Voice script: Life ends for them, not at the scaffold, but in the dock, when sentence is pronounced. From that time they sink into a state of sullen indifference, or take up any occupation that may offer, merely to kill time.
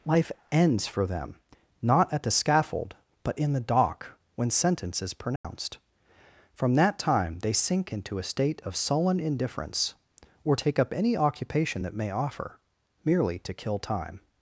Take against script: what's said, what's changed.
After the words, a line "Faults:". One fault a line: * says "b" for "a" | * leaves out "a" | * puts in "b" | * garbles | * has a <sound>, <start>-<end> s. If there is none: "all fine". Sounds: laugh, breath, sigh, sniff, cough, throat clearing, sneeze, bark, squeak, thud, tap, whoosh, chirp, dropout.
Life ends for them, not at the scaffold, but in the dock, when sentence is pronounced. From that time they sink into a state of sullen indifference, or take up any occupation that may offer, merely to kill time.
Faults:
* has a dropout, 5.4-5.4 s